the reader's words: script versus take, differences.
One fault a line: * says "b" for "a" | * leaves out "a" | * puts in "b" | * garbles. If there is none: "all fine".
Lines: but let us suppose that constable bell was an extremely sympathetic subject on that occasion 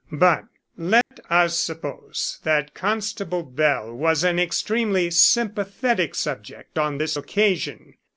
* says "this" for "that"